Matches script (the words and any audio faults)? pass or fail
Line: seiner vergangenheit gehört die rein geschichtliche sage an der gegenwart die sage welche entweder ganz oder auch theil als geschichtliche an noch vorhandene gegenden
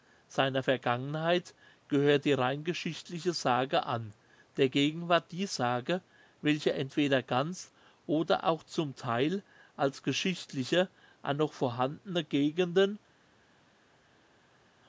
fail